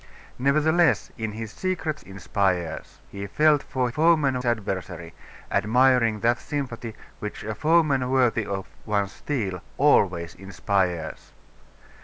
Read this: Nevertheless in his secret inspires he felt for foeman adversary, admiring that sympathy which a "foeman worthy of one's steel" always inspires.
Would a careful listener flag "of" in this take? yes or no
no